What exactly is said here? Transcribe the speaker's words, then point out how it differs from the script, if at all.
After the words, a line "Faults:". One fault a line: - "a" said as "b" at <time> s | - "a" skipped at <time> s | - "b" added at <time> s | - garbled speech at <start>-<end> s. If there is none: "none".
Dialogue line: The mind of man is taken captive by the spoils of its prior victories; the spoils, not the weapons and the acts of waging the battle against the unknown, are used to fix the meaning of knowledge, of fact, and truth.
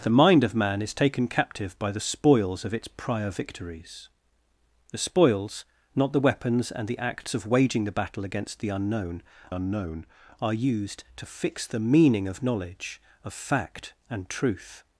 The mind of man is taken captive by the spoils of its prior victories; the spoils, not the weapons and the acts of waging the battle against the unknown unknown, are used to fix the meaning of knowledge, of fact, and truth.
Faults:
- "unknown" added at 9.5 s